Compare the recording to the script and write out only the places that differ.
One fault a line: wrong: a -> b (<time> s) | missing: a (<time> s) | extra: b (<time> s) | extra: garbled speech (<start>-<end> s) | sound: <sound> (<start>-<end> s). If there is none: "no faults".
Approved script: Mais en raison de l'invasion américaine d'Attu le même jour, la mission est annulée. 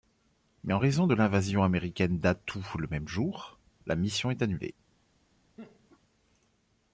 sound: laugh (5.6-6.0 s)